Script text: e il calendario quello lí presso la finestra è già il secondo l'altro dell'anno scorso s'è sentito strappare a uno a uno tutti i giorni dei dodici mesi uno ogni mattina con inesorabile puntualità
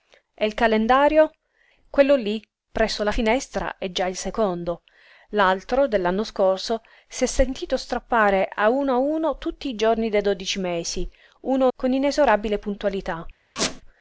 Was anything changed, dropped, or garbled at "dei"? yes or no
no